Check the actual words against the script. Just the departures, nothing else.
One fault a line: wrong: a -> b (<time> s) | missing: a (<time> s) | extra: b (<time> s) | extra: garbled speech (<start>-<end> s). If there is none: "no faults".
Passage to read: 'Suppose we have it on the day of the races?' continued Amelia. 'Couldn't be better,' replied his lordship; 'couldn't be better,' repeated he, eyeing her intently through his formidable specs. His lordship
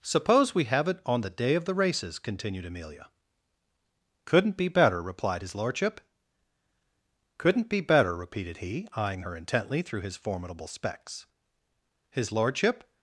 no faults